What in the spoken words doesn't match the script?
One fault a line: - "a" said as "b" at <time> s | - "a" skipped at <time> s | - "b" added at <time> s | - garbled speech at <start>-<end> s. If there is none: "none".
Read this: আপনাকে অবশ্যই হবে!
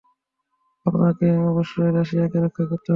- "রাশিয়াকে রক্ষা করতে" added at 1.9 s